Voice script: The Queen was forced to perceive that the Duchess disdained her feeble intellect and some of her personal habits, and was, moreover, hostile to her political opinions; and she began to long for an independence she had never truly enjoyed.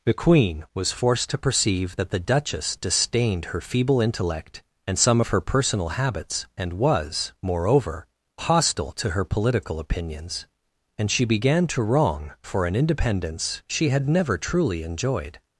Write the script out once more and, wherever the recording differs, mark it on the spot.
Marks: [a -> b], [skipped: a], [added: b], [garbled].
The Queen was forced to perceive that the Duchess disdained her feeble intellect and some of her personal habits, and was, moreover, hostile to her political opinions; and she began to [long -> wrong] for an independence she had never truly enjoyed.